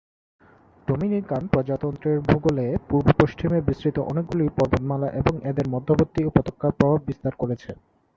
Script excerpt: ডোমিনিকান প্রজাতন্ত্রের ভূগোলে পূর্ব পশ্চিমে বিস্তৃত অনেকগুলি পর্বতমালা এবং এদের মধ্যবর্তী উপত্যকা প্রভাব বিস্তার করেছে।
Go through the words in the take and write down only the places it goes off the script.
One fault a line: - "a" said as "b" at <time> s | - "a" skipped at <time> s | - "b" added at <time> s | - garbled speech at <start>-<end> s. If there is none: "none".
none